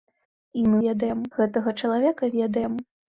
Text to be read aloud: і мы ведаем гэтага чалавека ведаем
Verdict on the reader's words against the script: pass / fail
pass